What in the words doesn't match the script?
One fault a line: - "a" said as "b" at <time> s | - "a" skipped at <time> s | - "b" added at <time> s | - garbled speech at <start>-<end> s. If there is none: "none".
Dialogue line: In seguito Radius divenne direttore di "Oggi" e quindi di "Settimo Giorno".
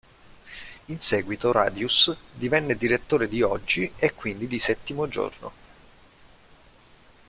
none